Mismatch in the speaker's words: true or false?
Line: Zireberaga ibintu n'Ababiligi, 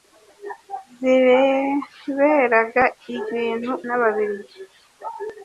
false